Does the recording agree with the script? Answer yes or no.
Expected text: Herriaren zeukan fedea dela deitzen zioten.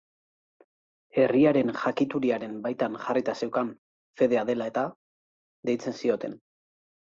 no